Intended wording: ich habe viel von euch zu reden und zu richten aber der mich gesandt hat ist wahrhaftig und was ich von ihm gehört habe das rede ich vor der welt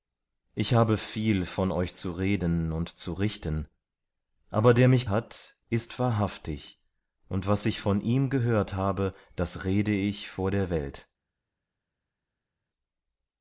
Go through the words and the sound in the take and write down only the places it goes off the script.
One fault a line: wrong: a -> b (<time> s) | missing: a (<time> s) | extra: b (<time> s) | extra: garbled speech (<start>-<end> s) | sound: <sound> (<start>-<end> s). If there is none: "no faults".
missing: gesandt (5.1 s)